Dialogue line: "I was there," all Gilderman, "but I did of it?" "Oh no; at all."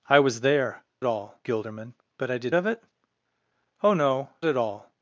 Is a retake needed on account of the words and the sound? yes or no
no